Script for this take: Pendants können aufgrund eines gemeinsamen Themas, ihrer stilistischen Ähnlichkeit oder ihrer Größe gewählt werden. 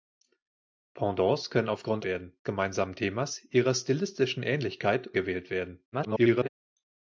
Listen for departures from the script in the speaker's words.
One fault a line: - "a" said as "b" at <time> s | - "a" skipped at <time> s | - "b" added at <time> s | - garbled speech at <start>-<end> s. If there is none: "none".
- "eines" said as "werden" at 2.0 s
- "oder ihrer Größe" skipped at 5.1 s
- garbled speech at 5.9-6.5 s